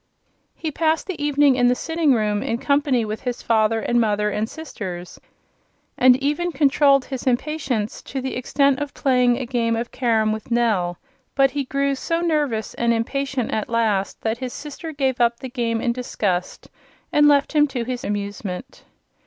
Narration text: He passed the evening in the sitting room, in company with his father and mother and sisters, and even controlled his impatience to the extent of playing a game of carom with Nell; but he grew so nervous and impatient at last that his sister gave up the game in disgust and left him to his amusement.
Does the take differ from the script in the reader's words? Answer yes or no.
no